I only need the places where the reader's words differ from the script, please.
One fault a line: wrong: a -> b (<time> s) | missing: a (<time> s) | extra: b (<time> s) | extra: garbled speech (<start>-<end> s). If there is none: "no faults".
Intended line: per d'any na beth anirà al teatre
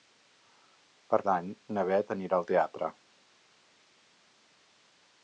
no faults